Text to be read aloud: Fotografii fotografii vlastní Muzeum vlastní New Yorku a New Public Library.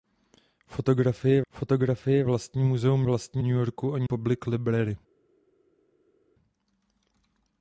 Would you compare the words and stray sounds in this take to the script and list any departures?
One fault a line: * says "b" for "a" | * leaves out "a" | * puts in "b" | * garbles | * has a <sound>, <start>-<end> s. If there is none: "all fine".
all fine